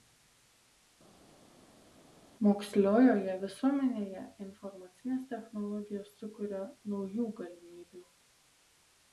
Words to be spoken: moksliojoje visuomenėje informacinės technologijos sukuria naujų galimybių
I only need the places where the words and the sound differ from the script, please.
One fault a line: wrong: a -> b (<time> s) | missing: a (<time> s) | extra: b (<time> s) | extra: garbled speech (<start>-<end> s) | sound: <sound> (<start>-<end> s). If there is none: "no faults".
no faults